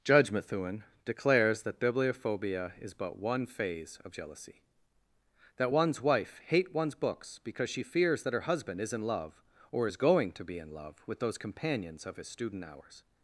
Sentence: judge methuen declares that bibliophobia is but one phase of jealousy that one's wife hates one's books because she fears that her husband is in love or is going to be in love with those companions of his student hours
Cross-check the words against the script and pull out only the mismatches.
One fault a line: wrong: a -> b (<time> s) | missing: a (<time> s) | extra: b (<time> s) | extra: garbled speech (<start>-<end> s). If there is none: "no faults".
wrong: hates -> hate (6.4 s)